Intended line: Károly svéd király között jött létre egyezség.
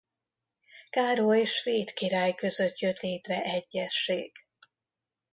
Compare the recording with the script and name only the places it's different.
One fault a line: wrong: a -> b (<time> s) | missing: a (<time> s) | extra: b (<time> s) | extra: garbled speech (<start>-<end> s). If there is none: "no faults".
no faults